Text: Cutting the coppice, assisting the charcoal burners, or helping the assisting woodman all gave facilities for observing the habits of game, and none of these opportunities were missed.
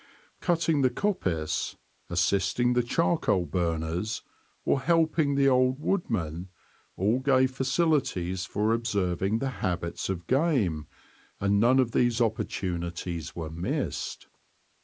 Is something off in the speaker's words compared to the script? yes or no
yes